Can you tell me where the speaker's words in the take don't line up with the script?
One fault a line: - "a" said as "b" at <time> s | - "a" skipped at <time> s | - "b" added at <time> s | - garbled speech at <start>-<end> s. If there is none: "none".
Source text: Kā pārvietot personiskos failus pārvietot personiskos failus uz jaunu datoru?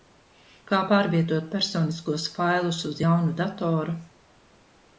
- "pārvietot personiskos failus" skipped at 2.8 s